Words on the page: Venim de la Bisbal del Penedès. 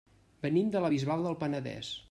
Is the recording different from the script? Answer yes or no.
no